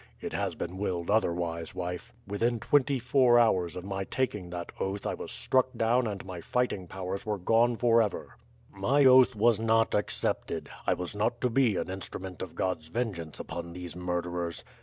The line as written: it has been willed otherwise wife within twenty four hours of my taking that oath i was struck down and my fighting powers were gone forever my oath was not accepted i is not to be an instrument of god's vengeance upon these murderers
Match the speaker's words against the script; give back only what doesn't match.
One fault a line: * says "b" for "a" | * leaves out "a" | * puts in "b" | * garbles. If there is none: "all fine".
* says "was" for "is"